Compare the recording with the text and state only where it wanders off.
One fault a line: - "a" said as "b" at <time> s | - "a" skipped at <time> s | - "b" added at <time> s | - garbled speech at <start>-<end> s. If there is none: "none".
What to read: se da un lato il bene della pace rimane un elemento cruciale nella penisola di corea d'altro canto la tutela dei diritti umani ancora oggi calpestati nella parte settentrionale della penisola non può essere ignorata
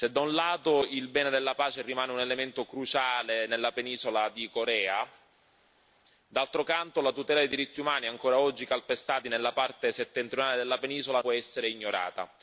- "non" skipped at 11.2 s